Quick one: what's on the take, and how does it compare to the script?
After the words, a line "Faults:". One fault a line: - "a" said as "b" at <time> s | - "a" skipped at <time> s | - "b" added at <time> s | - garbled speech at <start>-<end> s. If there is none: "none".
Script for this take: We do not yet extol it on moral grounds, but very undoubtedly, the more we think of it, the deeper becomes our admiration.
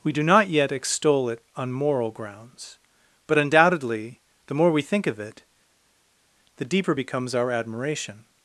We do not yet extol it on moral grounds, but undoubtedly, the more we think of it, the deeper becomes our admiration.
Faults:
- "very" skipped at 3.4 s